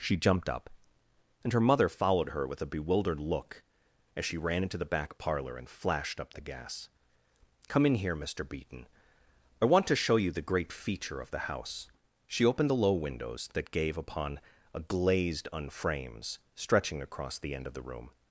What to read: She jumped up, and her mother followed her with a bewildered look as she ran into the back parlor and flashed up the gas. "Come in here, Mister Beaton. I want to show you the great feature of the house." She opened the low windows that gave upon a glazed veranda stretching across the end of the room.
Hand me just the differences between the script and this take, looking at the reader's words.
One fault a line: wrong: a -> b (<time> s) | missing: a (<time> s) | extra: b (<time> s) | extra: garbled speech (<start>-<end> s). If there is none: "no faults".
wrong: veranda -> unframes (15.5 s)